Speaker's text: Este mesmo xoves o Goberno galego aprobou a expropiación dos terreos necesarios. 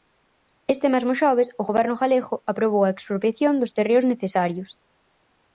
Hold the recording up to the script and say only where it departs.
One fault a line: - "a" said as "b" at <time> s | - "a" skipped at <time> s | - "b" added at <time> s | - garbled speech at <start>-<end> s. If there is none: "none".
none